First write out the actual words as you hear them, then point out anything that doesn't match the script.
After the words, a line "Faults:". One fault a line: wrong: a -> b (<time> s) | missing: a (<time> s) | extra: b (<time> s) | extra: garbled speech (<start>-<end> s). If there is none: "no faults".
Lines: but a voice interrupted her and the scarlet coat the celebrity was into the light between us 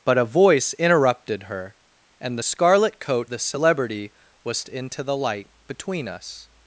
but a voice interrupted her and the scarlet coat the celebrity was into the light between us
Faults:
no faults